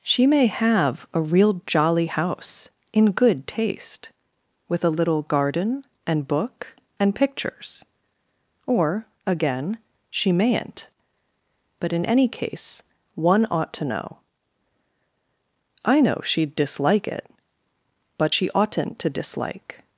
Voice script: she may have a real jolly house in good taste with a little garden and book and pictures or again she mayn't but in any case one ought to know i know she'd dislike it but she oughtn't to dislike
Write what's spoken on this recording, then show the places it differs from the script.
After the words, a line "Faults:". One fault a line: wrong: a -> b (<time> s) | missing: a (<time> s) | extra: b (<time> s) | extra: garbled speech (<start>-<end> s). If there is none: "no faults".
she may have a real jolly house in good taste with a little garden and book and pictures or again she mayn't but in any case one ought to know i know she'd dislike it but she oughtn't to dislike
Faults:
no faults